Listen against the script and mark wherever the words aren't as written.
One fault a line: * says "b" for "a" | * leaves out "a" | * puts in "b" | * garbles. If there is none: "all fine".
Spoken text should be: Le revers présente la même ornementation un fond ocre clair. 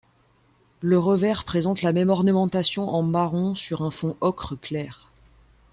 * puts in "en marron sur"